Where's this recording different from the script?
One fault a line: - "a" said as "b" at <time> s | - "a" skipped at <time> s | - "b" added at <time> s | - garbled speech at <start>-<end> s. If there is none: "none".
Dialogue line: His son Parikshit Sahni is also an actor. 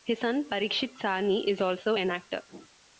none